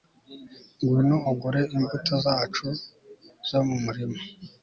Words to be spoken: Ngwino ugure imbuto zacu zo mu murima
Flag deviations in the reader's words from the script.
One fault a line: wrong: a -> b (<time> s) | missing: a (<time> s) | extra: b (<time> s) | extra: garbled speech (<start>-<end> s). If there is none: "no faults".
no faults